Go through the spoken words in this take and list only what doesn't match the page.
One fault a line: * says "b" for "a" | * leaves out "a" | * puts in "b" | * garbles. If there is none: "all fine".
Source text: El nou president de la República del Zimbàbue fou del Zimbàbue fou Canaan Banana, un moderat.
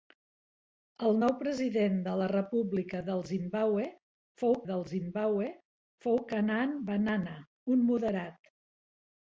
all fine